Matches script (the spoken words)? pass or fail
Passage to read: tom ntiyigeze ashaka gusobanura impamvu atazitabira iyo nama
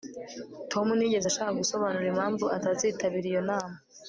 pass